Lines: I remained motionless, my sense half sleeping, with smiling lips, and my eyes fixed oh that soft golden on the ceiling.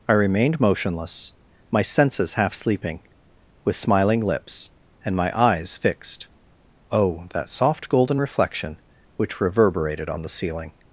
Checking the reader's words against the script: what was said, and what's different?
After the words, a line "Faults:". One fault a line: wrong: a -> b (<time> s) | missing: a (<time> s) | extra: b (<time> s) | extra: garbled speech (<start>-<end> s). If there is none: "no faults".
I remained motionless, my senses half sleeping, with smiling lips, and my eyes fixed oh that soft golden reflection which reverberated on the ceiling.
Faults:
wrong: sense -> senses (1.8 s)
extra: reflection which reverberated (8.2 s)